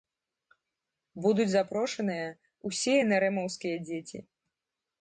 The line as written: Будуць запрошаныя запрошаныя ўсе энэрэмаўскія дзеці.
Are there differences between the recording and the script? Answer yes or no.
yes